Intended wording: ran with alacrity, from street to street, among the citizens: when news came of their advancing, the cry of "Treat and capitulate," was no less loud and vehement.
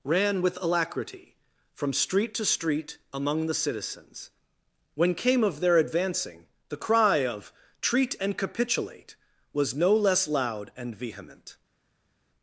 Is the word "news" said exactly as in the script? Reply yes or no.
no